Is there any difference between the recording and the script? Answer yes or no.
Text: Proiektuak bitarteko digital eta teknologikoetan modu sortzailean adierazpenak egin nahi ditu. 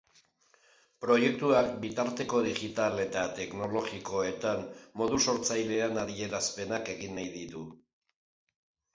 no